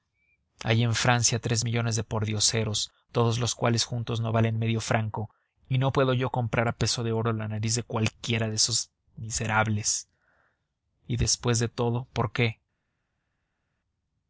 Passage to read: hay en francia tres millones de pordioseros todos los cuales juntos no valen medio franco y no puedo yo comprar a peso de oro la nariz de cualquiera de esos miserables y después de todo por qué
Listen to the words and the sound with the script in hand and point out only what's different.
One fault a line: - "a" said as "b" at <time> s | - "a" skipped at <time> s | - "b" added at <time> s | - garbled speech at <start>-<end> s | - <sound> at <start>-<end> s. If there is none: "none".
none